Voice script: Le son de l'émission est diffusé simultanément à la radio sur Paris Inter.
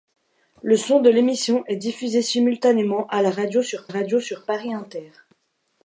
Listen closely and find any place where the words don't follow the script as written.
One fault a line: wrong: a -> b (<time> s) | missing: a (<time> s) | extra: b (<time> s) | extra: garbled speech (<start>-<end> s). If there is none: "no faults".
extra: radio sur (3.9 s)